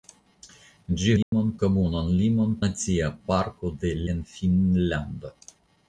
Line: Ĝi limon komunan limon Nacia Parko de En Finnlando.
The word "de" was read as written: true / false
true